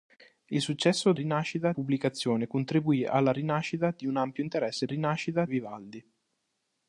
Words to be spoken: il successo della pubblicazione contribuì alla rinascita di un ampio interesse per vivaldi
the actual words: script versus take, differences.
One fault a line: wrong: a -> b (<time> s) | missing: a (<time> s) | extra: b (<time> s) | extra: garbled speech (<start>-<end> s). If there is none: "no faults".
wrong: della -> rinascita (1.1 s)
wrong: per -> rinascita (4.9 s)